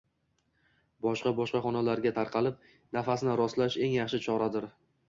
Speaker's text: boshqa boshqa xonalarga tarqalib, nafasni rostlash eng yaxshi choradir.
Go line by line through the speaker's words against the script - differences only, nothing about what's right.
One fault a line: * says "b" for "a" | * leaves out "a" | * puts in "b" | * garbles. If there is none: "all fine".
all fine